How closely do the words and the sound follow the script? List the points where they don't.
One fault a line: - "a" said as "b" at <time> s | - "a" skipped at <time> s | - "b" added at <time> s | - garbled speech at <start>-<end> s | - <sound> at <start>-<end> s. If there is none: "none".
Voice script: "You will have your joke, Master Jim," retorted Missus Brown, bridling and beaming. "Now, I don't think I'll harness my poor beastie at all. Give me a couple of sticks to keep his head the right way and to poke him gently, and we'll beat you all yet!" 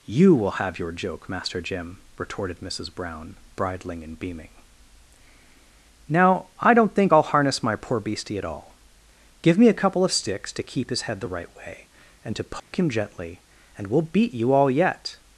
- dropout at 12.6-12.7 s